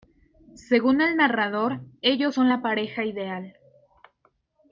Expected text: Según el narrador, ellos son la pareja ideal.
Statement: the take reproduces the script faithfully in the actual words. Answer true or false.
true